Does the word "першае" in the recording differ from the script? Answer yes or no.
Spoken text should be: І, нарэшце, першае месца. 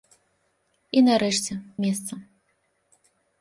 yes